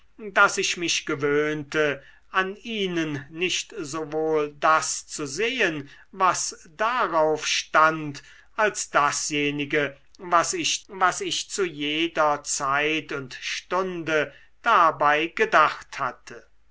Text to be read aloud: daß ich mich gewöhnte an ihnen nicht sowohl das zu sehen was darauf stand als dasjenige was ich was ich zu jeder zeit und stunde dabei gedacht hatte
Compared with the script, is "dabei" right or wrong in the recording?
right